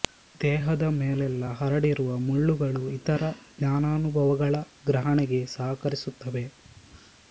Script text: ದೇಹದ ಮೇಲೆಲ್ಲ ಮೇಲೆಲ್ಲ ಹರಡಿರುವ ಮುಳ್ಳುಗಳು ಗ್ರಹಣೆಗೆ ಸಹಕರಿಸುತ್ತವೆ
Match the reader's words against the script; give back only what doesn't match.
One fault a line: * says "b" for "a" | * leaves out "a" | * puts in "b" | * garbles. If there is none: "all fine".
* leaves out "ಮೇಲೆಲ್ಲ"
* puts in "ಇತರ ಜ್ಞಾನಾನುಭವಗಳ"